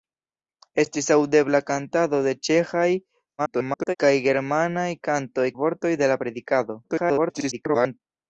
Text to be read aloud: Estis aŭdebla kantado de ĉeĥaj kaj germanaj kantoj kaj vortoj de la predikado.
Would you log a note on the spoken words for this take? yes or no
yes